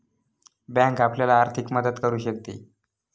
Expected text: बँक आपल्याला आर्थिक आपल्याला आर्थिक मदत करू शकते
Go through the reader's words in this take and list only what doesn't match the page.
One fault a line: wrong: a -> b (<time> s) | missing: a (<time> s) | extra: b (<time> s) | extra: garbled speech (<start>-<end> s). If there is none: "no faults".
missing: आपल्याला आर्थिक (1.7 s)